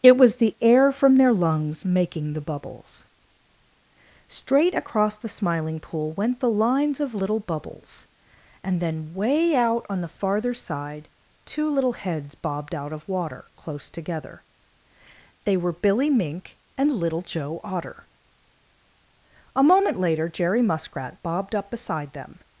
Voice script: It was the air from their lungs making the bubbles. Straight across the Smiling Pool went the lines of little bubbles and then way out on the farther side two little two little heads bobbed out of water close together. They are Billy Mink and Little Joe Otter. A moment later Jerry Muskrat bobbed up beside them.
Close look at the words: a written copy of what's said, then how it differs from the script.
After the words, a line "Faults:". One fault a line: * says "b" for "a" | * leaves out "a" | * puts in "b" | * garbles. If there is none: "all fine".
It was the air from their lungs making the bubbles. Straight across the Smiling Pool went the lines of little bubbles and then way out on the farther side two little heads bobbed out of water close together. They were Billy Mink and Little Joe Otter. A moment later Jerry Muskrat bobbed up beside them.
Faults:
* leaves out "two little"
* says "were" for "are"